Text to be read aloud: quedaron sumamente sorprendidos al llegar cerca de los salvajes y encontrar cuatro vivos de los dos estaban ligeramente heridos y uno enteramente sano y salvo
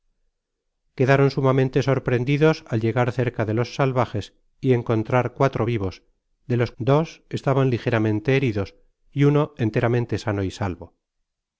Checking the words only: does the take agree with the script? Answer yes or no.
yes